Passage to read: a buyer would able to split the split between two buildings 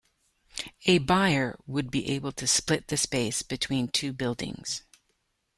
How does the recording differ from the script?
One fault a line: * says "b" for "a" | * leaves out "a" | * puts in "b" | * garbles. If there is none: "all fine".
* puts in "be"
* says "space" for "split"